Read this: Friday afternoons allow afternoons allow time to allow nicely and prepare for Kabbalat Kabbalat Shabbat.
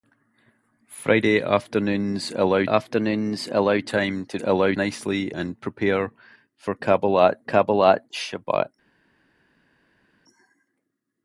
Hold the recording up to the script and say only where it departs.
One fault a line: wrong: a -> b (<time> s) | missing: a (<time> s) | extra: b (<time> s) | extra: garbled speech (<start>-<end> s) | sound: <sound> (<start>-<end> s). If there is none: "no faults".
no faults